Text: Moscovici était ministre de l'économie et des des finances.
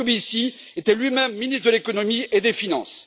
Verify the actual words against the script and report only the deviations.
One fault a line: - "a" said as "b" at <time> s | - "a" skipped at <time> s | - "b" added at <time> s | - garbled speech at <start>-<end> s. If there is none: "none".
- "lui même" added at 1.0 s
- "des" skipped at 2.5 s